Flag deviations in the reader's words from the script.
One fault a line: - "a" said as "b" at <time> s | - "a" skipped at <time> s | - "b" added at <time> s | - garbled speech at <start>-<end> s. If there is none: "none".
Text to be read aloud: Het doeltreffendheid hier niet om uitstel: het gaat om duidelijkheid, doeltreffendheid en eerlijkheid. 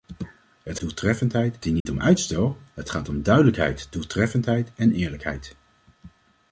none